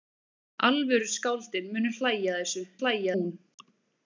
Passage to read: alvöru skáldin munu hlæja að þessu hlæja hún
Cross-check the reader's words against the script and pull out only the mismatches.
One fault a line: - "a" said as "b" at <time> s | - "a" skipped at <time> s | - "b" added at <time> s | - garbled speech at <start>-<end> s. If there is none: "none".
none